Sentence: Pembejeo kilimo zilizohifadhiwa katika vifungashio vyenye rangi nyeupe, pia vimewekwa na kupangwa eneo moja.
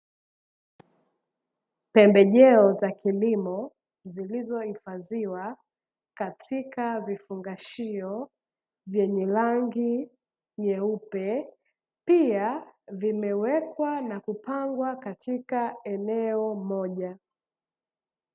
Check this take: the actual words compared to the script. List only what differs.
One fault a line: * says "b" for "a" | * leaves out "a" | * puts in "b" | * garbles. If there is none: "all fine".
* puts in "za"
* puts in "katika"